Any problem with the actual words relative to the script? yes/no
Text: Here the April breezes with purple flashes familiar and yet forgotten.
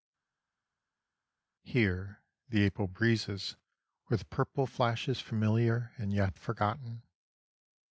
no